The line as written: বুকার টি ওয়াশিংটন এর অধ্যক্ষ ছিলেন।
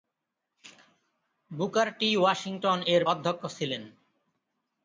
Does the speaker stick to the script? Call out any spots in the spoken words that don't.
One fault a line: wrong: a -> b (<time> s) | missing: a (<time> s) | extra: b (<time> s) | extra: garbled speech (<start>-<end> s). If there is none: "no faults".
no faults